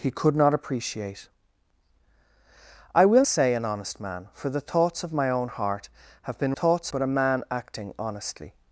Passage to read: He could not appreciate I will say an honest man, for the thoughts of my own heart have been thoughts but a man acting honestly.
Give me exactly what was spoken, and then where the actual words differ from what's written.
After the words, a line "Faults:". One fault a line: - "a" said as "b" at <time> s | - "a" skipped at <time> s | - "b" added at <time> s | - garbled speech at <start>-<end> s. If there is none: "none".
He could not appreciate I will say an honest man, for the thoughts of my own heart have been thoughts but a man acting honestly.
Faults:
none